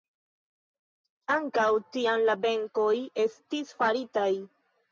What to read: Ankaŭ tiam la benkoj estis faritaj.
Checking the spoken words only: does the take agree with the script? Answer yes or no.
yes